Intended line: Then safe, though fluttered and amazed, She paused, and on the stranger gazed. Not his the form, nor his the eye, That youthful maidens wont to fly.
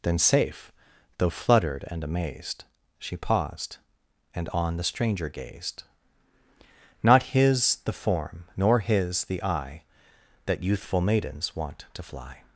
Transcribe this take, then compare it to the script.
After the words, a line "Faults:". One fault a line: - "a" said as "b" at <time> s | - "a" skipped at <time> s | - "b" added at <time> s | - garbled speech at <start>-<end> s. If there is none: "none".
Then safe, though fluttered and amazed, She paused, and on the stranger gazed. Not his the form, nor his the eye, That youthful maidens wont to fly.
Faults:
none